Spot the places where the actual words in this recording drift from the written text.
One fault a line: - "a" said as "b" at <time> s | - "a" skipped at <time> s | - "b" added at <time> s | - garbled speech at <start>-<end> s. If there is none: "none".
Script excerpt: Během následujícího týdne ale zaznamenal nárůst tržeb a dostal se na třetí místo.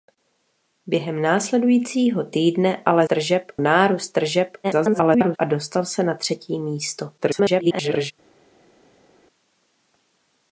- "zaznamenal" said as "tržeb" at 3.0 s
- garbled speech at 4.6-5.4 s
- garbled speech at 7.2-8.1 s